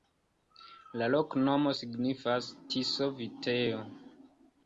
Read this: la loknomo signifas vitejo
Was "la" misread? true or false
false